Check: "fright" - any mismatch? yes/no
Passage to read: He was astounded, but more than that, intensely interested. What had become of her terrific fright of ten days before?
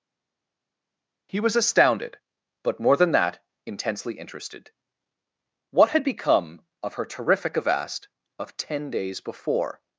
yes